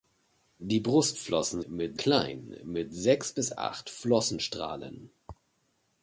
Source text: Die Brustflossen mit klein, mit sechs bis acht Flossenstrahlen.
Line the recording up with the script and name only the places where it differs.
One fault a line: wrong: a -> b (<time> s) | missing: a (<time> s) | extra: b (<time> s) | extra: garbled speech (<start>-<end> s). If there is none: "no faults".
no faults